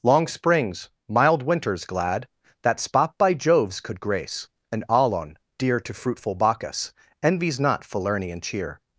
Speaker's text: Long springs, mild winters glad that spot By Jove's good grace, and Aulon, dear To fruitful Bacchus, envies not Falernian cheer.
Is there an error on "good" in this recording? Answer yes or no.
yes